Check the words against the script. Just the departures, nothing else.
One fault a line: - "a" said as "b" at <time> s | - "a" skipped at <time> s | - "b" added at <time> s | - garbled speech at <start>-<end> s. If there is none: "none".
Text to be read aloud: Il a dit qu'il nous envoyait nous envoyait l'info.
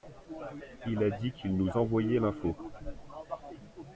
- "nous envoyait" skipped at 2.2 s